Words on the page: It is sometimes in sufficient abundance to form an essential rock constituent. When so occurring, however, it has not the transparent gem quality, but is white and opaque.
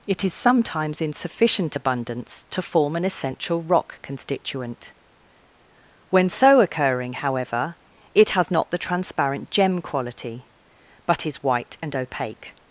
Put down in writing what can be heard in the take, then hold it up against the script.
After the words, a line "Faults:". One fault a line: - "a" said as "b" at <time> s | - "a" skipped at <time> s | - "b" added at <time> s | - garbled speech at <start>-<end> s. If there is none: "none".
It is sometimes in sufficient abundance to form an essential rock constituent. When so occurring, however, it has not the transparent gem quality, but is white and opaque.
Faults:
none